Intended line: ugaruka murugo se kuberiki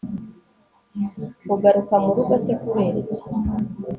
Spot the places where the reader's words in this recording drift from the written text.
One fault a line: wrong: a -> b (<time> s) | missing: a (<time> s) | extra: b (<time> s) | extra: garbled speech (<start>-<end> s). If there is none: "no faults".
no faults